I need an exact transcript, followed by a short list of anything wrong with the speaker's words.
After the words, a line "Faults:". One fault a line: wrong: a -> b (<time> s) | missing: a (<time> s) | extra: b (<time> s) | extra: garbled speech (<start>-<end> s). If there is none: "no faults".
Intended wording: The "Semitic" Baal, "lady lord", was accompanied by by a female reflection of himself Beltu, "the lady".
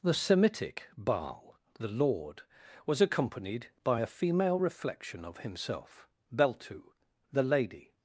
The "Semitic" Baal, "the lord", was accompanied by a female reflection of himself Beltu, "the lady".
Faults:
wrong: lady -> the (1.8 s)
missing: by (4.0 s)